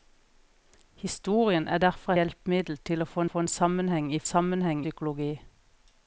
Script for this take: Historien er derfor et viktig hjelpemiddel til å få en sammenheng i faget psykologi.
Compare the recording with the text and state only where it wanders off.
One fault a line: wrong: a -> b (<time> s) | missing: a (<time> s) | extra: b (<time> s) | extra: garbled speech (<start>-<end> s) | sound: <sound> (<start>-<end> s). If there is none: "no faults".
missing: et viktig (2.1 s)
extra: få (3.3 s)
wrong: faget -> sammenheng (4.2 s)